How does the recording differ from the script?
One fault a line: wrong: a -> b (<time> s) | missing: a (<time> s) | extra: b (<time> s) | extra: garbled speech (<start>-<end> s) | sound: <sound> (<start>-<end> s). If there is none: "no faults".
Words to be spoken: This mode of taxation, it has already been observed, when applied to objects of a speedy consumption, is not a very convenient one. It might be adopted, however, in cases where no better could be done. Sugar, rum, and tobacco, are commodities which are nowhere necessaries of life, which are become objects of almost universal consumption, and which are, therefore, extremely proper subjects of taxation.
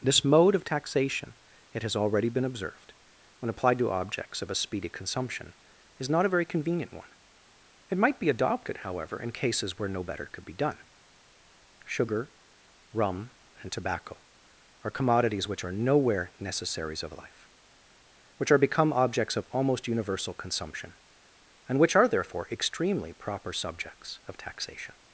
no faults